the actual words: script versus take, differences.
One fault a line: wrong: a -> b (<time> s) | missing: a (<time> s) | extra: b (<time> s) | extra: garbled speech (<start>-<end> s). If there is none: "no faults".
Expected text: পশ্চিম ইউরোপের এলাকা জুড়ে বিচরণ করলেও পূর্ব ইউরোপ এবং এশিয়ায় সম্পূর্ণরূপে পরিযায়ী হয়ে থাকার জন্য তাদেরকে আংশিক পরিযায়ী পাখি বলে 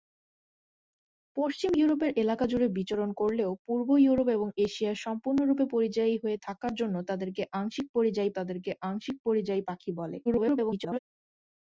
extra: তাদেরকে আংশিক পরিযায়ী (8.4 s)
extra: garbled speech (10.3-11.0 s)